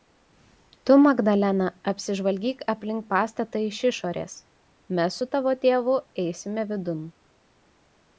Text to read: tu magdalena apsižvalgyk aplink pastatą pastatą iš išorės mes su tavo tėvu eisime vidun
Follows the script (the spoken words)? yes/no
no